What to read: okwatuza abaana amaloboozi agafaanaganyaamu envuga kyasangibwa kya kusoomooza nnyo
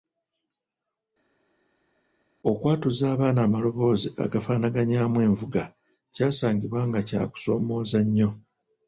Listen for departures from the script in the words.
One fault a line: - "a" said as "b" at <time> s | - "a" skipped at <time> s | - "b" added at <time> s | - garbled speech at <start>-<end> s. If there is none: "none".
- "nga" added at 6.9 s